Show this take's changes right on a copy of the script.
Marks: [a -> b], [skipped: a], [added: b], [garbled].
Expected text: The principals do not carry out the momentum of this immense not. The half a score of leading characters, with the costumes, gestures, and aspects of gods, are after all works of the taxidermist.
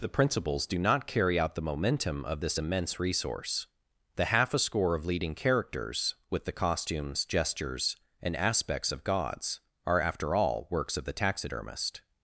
The principals do not carry out the momentum of this immense [not. -> resource] The half a score of leading characters, with the costumes, gestures, and aspects of gods, are after all works of the taxidermist.